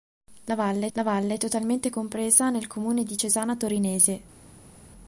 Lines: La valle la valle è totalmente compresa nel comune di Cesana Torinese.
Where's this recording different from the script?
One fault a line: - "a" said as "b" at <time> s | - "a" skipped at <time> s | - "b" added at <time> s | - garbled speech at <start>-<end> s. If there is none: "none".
none